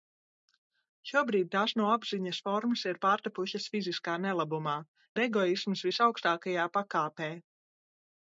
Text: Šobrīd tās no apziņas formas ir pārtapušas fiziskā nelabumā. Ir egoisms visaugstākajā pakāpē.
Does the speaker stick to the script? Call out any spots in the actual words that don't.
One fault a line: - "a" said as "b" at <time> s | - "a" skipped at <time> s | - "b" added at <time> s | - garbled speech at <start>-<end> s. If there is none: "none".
none